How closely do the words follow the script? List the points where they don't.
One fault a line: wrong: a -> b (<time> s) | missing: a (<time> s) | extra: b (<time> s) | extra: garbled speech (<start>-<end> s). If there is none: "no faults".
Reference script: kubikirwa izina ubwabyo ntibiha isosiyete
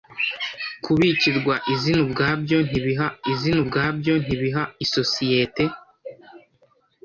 extra: izina ubwabyo ntibiha (3.3 s)